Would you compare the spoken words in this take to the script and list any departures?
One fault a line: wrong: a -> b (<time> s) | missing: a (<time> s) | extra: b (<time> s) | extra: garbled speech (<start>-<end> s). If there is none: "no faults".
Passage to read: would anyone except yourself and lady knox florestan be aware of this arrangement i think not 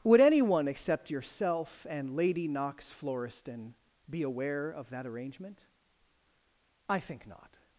wrong: this -> that (4.9 s)